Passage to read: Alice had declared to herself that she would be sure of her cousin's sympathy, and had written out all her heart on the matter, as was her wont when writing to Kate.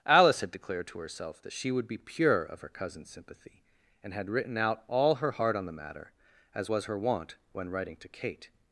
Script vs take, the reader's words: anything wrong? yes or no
yes